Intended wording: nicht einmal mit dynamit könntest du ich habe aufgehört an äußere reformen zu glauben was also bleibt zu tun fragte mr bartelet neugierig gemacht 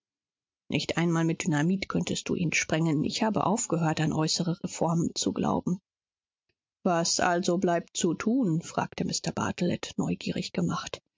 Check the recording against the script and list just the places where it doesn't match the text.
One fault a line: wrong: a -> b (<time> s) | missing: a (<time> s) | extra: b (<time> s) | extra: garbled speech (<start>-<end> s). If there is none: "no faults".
extra: ihn sprengen (2.4 s)